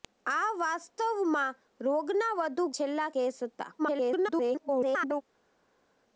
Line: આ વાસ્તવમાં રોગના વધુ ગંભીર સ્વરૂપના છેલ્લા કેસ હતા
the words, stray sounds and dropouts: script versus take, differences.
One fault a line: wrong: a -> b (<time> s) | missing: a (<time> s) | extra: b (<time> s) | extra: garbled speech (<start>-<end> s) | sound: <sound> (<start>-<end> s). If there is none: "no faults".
missing: ગંભીર સ્વરૂપના (2.7 s)
extra: garbled speech (3.8-5.2 s)